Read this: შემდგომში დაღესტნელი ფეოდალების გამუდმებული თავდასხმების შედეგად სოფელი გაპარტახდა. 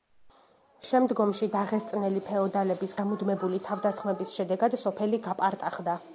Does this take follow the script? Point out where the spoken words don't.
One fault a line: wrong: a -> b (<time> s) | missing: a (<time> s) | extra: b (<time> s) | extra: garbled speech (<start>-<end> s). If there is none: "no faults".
no faults